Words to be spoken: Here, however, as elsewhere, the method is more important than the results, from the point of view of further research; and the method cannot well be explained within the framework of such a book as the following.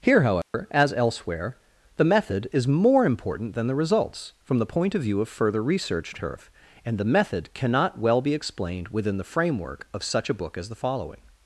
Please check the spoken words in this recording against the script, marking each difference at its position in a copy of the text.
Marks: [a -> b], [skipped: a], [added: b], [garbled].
Here, however, as elsewhere, the method is more important than the results, from the point of view of further research; [added: turf] and the method cannot well be explained within the framework of such a book as the following.